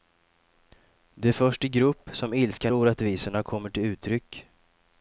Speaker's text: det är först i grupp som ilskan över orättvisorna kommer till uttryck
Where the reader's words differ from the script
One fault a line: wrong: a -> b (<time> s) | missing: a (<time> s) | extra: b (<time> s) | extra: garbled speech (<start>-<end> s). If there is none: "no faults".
missing: över (2.7 s)